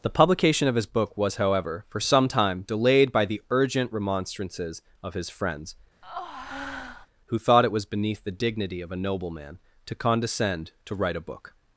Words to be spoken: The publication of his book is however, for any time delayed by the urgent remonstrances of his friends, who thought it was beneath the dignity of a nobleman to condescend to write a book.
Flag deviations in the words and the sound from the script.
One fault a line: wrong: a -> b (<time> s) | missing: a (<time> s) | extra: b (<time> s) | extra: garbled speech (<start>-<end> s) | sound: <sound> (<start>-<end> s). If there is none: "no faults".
wrong: is -> was (1.1 s)
wrong: any -> some (2.0 s)
sound: breath (6.0-7.1 s)